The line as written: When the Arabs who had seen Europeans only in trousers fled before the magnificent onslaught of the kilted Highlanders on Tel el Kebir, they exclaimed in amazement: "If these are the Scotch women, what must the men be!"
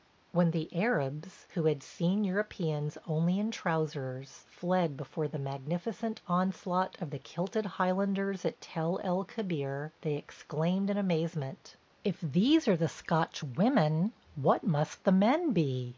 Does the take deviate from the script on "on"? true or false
true